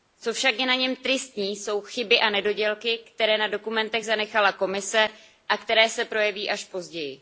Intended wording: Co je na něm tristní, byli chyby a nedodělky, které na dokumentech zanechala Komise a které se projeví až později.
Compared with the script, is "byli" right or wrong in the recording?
wrong